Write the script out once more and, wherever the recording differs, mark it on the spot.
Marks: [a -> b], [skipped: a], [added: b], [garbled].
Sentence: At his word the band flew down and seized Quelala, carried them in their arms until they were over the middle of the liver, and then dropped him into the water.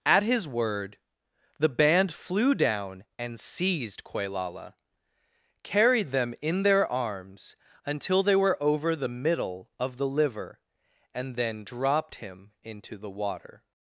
At his word the band flew down and seized Quelala, carried them in their arms until they were over the middle of the liver, and then dropped him into the water.